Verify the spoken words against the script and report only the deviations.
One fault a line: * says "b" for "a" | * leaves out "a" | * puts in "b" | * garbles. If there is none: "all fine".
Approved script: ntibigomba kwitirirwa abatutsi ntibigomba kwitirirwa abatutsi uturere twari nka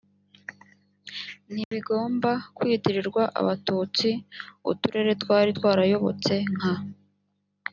* leaves out "ntibigomba kwitirirwa abatutsi"
* puts in "twarayobotse"